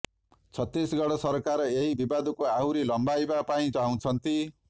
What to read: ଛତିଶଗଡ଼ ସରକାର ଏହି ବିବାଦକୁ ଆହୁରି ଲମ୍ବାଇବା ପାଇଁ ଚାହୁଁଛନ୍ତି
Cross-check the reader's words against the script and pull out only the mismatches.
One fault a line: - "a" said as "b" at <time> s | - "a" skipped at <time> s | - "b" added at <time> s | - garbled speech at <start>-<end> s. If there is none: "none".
none